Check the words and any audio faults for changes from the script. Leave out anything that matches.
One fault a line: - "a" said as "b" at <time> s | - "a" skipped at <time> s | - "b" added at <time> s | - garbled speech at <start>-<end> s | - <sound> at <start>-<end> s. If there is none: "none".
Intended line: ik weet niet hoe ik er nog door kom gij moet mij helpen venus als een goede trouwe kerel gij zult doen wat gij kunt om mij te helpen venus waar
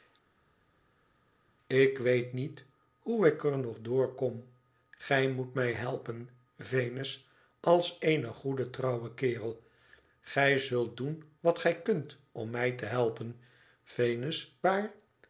none